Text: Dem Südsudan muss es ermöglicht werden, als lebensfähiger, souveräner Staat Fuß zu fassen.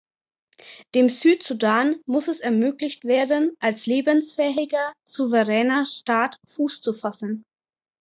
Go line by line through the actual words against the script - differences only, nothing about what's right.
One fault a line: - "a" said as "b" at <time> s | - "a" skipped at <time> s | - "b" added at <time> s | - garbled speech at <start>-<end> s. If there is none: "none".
none